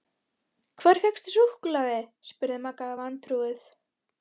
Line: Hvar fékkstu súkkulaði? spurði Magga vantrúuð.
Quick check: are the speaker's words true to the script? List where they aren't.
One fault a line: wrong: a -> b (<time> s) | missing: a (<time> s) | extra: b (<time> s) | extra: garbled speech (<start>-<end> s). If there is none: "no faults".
no faults